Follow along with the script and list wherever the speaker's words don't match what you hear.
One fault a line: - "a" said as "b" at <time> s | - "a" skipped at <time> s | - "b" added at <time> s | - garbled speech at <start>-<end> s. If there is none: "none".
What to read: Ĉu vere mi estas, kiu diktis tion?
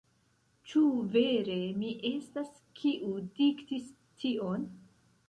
none